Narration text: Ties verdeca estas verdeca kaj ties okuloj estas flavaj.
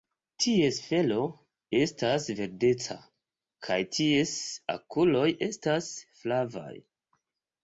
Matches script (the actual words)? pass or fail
fail